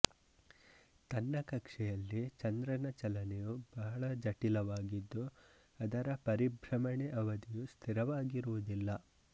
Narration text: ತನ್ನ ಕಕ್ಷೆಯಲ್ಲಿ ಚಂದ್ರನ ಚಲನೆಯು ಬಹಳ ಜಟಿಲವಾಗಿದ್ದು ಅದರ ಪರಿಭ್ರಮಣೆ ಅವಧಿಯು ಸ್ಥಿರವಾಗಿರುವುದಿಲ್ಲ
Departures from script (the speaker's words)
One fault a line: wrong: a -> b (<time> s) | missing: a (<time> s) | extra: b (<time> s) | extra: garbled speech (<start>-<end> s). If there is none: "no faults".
no faults